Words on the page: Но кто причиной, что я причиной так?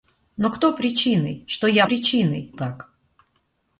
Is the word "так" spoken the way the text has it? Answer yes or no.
yes